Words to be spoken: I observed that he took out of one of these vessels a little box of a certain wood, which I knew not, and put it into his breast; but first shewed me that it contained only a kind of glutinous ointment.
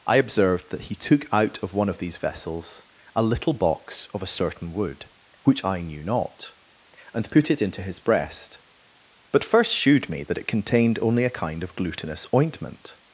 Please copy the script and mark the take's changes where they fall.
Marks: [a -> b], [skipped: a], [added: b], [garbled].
I observed that he took out of one of these vessels a little box of a certain wood, which I knew not, and put it into his breast; but first shewed me that it contained only a kind of glutinous ointment.